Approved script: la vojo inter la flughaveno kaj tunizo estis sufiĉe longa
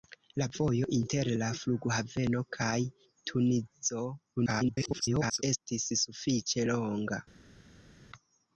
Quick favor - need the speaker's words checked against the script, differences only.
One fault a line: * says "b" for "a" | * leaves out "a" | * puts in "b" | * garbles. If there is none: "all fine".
* garbles